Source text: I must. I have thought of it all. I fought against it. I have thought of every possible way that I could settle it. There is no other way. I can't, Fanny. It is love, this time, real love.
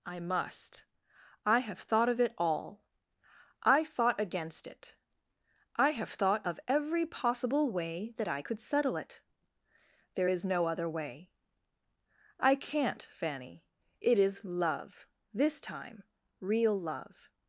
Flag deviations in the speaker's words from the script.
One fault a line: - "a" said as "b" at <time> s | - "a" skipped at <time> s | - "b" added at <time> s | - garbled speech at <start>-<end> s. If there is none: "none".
none